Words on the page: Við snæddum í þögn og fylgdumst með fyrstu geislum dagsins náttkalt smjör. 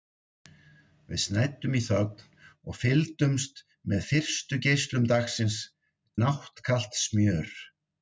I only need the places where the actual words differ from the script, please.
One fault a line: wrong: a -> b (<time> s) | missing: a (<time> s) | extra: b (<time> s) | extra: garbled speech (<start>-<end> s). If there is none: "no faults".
no faults